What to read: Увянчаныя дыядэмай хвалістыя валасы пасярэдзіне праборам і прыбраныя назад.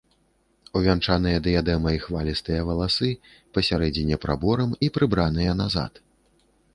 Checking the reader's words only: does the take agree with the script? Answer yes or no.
yes